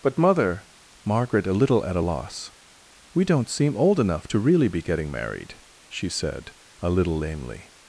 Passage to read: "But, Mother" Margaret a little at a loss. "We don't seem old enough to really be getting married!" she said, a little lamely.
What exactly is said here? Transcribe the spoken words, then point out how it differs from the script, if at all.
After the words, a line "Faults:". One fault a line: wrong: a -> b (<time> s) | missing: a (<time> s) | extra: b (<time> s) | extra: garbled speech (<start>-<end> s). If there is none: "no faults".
"But, Mother" Margaret a little at a loss. "We don't seem old enough to really be getting married!" she said, a little lamely.
Faults:
no faults